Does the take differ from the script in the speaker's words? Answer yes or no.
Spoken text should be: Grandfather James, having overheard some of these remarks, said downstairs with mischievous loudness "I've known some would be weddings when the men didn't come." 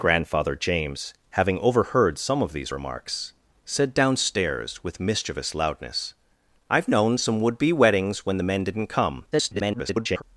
yes